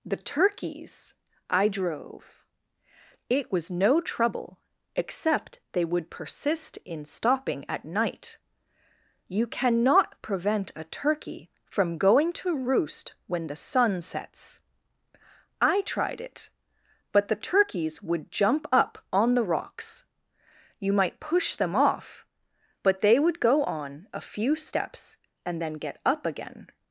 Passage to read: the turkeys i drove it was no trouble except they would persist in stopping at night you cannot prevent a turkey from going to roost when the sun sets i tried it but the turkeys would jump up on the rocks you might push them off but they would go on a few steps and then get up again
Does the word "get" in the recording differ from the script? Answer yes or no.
no